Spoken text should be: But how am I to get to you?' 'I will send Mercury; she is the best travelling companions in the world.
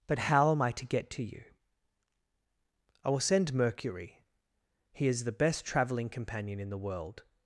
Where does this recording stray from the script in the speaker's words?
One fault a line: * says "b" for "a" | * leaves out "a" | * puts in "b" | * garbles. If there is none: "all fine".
* says "he" for "she"
* says "companion" for "companions"